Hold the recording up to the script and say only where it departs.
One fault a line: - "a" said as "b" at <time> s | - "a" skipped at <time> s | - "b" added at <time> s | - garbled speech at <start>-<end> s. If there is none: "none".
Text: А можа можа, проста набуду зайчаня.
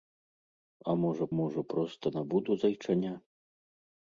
none